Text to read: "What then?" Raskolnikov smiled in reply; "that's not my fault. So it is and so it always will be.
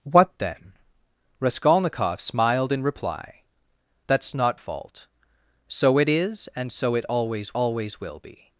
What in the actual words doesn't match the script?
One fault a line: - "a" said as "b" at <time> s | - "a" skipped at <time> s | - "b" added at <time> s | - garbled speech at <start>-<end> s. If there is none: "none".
- "my" skipped at 4.6 s
- "always" added at 7.5 s